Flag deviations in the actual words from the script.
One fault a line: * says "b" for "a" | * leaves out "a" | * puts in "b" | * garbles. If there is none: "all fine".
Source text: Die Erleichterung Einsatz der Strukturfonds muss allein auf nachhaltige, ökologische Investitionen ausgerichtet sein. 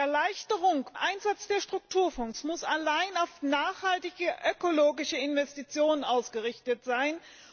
all fine